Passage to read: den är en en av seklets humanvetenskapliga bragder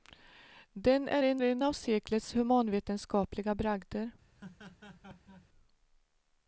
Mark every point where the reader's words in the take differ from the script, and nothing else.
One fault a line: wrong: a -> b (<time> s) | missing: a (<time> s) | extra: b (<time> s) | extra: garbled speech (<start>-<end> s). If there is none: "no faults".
no faults